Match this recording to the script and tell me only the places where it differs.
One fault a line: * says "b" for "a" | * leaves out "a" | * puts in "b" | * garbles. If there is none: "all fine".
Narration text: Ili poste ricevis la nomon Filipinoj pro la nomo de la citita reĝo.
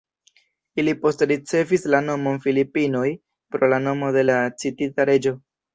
all fine